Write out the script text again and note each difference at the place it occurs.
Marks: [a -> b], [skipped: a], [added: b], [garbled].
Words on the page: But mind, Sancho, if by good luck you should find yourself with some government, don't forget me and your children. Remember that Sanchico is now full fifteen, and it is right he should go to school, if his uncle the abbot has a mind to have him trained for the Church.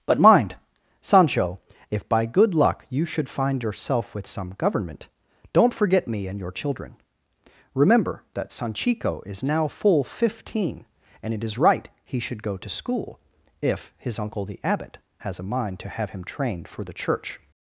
But mind, Sancho, if by good luck you should find yourself with some government, don't forget me and your children. Remember that Sanchico is now full fifteen, and it is right he should go to school, if his uncle the abbot has a mind to have him trained for the Church.